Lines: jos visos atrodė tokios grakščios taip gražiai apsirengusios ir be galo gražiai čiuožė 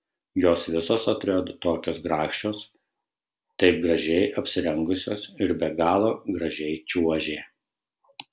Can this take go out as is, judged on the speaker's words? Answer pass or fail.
pass